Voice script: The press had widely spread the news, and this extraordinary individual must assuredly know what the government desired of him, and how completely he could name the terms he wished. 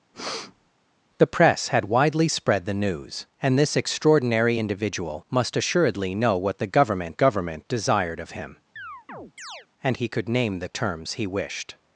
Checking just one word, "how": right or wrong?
wrong